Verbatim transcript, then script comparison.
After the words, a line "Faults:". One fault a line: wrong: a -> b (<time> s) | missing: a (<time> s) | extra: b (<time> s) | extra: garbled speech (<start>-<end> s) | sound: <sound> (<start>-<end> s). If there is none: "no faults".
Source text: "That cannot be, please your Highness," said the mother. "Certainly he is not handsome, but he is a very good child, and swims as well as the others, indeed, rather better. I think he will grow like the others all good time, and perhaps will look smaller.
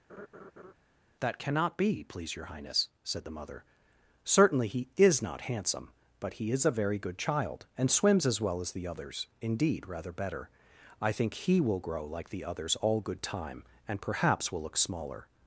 "That cannot be, please your Highness," said the mother. "Certainly he is not handsome, but he is a very good child, and swims as well as the others, indeed, rather better. I think he will grow like the others all good time, and perhaps will look smaller.
Faults:
sound: laugh (0.1-0.7 s)